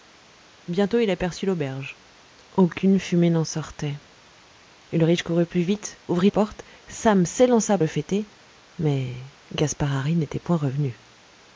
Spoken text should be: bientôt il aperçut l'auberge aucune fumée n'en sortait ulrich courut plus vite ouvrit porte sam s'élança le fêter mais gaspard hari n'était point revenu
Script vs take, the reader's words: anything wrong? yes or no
no